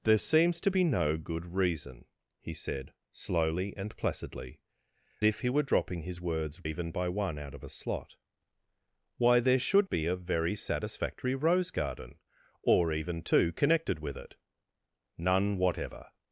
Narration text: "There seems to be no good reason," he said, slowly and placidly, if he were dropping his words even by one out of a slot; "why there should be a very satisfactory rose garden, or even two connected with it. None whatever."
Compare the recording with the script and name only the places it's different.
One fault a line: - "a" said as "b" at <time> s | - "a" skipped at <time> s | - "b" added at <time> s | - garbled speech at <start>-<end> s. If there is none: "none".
none